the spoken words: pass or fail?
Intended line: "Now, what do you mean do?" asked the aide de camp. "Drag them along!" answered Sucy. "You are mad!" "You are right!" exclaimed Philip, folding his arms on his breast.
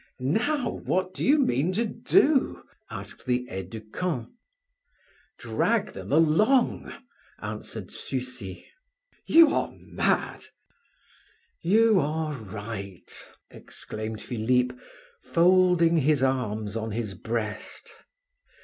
fail